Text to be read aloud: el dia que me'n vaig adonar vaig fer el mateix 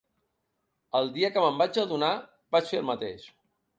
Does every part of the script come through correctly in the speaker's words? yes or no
yes